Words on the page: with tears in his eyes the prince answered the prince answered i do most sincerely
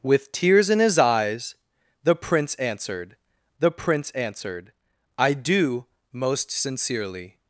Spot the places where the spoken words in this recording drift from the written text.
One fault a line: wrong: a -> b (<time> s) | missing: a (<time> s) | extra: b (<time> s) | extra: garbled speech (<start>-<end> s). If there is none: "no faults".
no faults